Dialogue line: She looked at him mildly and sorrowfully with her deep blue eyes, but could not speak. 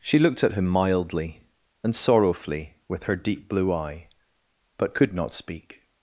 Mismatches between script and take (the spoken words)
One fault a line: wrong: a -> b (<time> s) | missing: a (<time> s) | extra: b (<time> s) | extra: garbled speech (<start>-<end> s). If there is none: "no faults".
wrong: eyes -> eye (3.7 s)